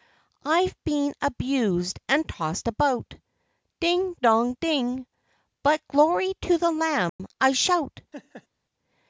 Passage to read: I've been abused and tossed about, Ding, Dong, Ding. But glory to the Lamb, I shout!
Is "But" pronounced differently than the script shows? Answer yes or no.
no